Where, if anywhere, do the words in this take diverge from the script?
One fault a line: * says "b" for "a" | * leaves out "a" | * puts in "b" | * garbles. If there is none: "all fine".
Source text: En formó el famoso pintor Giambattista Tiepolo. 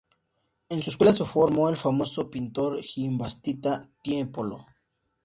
* puts in "su escuela se"